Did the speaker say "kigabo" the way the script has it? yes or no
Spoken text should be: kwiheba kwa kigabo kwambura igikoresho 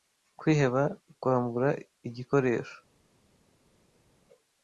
no